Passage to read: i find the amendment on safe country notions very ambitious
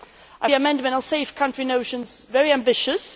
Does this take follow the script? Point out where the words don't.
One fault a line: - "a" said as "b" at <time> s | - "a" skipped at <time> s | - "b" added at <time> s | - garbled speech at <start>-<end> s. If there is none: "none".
- "find" skipped at 0.5 s